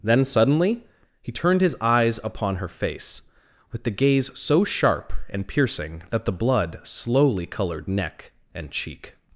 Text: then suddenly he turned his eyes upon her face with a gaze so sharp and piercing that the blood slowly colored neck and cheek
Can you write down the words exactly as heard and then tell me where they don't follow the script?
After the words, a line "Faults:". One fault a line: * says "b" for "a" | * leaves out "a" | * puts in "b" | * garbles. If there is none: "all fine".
then suddenly he turned his eyes upon her face with the gaze so sharp and piercing that the blood slowly colored neck and cheek
Faults:
* says "the" for "a"